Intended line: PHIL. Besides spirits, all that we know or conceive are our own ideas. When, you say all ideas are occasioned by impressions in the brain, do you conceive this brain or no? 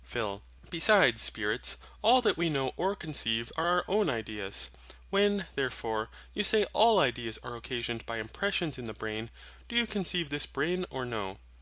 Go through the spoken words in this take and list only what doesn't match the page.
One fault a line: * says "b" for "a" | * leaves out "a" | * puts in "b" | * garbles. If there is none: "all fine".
* puts in "therefore"